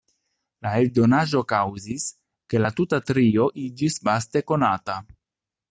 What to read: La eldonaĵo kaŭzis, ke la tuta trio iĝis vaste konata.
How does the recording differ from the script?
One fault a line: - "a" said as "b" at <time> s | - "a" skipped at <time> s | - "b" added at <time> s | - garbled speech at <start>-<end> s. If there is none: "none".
none